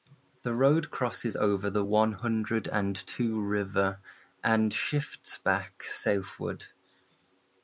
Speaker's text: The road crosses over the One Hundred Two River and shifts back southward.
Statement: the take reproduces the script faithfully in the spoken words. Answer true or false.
false